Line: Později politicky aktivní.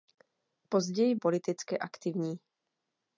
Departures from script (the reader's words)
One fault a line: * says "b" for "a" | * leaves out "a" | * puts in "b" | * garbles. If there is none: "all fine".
all fine